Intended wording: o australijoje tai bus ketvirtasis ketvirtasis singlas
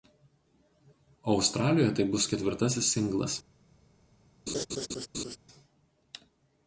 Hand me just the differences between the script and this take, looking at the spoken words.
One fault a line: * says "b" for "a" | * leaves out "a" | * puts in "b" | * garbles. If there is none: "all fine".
* leaves out "ketvirtasis"